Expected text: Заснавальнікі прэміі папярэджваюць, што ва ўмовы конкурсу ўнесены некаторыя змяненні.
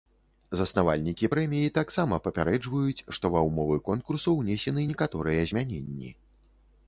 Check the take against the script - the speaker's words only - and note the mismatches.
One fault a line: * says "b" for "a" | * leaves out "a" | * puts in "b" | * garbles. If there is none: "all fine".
* puts in "таксама"